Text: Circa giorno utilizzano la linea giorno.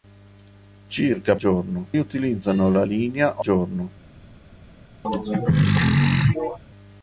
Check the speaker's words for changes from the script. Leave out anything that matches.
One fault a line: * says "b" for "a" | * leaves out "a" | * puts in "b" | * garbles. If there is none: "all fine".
all fine